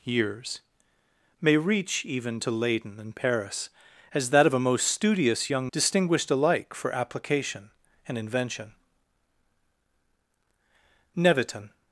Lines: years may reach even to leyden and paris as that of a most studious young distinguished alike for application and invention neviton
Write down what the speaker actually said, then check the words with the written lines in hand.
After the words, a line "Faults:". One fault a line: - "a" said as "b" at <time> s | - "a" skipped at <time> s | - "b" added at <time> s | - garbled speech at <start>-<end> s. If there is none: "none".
years may reach even to leyden and paris as that of a most studious young distinguished alike for application and invention neviton
Faults:
none